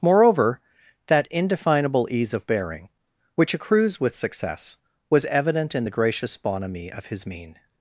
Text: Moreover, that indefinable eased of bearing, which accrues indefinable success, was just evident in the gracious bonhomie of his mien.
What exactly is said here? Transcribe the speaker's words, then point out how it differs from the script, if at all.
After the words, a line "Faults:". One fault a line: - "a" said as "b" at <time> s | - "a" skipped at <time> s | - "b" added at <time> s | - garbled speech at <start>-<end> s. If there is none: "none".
Moreover, that indefinable ease of bearing, which accrues with success, was evident in the gracious bonhomie of his mien.
Faults:
- "eased" said as "ease" at 2.1 s
- "indefinable" said as "with" at 4.0 s
- "just" skipped at 5.3 s